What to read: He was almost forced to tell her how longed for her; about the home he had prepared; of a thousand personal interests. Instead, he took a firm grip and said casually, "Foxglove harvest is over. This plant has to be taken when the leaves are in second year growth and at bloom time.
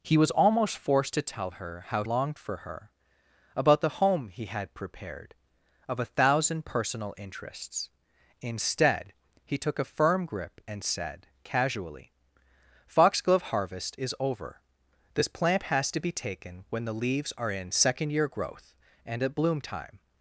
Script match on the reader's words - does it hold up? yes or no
yes